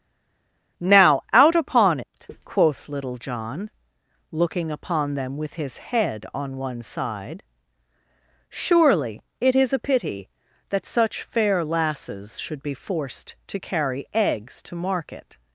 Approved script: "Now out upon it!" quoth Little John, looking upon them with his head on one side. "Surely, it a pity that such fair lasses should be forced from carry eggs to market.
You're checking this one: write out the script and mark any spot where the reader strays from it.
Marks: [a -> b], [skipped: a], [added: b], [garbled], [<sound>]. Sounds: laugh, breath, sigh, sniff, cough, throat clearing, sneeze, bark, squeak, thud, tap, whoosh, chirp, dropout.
"Now out upon it!" quoth Little John, looking upon them with his head on one side. "Surely, it [added: is] a pity that such fair lasses should be forced [from -> to] carry eggs to market.